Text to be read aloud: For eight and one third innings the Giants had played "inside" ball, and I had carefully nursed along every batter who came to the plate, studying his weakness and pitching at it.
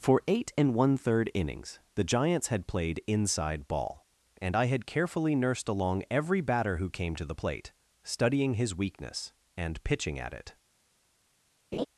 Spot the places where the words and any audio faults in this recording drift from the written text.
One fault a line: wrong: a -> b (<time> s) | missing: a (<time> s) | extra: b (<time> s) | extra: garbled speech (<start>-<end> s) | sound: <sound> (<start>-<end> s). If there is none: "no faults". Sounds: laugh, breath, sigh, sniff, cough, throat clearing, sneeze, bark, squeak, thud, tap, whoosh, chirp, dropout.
sound: laugh (11.7-11.9 s)